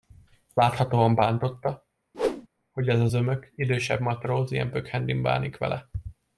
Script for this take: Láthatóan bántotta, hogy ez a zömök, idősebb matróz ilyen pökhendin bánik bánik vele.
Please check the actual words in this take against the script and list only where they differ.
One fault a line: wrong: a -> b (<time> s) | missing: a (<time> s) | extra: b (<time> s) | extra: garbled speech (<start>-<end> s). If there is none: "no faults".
missing: bánik (5.6 s)